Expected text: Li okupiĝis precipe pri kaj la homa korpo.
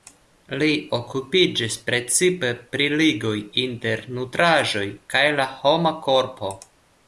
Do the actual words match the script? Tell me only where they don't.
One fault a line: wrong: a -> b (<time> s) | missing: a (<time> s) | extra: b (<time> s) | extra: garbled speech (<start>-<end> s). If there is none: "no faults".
extra: ligoj inter nutraĵoj (3.0 s)